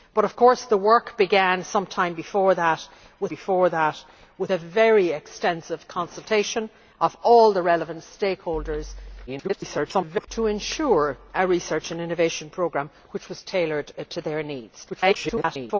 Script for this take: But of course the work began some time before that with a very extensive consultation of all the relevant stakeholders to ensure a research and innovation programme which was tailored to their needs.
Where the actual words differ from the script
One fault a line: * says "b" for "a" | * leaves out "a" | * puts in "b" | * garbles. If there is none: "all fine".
* puts in "before that with"
* garbles
* garbles